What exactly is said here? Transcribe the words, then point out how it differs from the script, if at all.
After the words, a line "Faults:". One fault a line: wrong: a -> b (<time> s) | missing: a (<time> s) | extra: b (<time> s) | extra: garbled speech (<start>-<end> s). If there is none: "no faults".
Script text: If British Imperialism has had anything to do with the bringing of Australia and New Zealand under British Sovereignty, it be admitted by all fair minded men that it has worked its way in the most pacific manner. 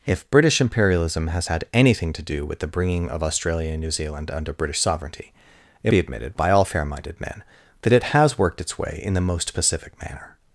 If British Imperialism has had anything to do with the bringing of Australia and New Zealand under British Sovereignty, it be admitted by all fair minded men that it has worked its way in the most pacific manner.
Faults:
no faults